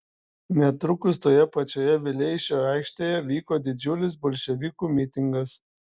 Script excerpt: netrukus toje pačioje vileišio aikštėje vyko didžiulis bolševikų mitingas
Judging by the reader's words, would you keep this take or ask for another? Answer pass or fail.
pass